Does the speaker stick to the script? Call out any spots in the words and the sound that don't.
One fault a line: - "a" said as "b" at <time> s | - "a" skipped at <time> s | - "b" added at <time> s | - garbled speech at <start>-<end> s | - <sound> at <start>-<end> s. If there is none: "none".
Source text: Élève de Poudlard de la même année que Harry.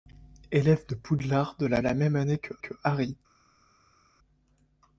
- "la" added at 1.8 s
- "que" added at 2.6 s